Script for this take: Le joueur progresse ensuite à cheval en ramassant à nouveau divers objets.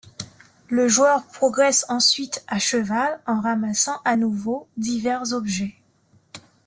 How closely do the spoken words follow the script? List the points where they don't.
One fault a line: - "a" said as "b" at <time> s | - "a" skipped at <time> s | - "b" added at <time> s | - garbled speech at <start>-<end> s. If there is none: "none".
none